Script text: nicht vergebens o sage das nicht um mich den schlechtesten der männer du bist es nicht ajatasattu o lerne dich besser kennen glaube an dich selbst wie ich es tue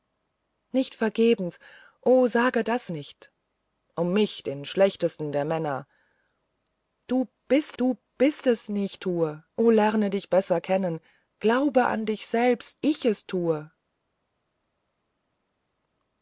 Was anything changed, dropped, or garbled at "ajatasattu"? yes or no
yes